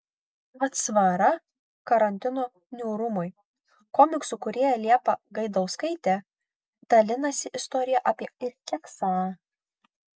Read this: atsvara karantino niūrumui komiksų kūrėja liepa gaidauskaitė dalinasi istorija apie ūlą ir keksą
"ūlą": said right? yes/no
no